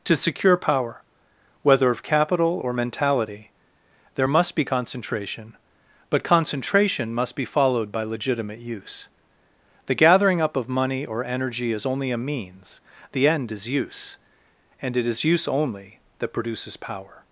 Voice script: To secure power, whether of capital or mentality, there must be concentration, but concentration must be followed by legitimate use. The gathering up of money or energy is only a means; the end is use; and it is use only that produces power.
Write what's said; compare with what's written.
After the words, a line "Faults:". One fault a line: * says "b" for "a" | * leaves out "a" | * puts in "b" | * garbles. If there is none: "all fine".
To secure power, whether of capital or mentality, there must be concentration, but concentration must be followed by legitimate use. The gathering up of money or energy is only a means; the end is use; and it is use only that produces power.
Faults:
all fine